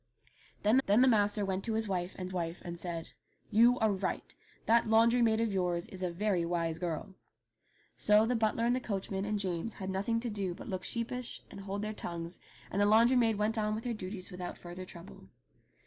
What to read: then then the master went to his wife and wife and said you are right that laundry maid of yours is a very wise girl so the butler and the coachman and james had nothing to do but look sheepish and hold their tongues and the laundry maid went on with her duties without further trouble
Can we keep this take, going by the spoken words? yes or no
yes